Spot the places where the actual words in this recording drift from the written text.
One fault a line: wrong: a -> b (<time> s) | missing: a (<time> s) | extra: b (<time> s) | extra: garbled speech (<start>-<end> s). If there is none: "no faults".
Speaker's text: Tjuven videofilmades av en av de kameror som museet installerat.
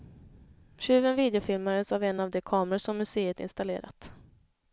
no faults